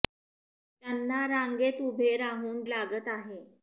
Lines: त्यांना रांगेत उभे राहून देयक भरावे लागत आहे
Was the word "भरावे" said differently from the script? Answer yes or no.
yes